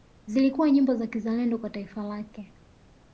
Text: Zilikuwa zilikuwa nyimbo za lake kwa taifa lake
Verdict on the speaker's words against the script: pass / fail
fail